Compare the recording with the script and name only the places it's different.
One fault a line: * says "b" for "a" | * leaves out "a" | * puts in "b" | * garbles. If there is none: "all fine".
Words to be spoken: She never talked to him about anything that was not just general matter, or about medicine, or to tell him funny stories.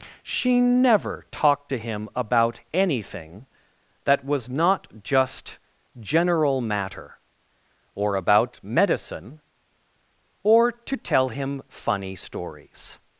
all fine